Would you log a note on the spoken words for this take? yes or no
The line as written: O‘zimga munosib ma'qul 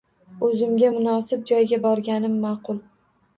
yes